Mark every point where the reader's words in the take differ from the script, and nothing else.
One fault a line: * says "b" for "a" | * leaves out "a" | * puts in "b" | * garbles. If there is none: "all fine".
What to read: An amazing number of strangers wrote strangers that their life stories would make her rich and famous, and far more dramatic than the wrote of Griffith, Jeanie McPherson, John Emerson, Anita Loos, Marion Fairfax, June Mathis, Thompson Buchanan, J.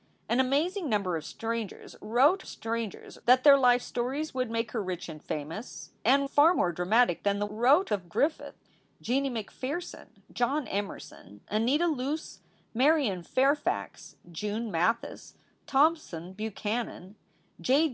all fine